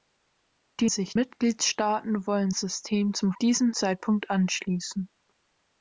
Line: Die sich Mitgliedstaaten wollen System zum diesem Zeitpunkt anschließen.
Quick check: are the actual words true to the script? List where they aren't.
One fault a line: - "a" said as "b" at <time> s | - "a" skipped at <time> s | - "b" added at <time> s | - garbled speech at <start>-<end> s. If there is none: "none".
none